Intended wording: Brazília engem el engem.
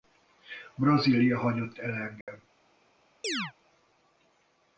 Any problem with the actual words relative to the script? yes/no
yes